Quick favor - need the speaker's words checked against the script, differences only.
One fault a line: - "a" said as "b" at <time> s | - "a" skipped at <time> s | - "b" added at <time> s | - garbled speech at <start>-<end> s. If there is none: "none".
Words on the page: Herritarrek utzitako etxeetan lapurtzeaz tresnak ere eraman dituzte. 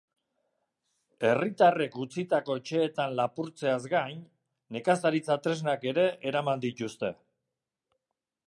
- "gain nekazaritza" added at 3.9 s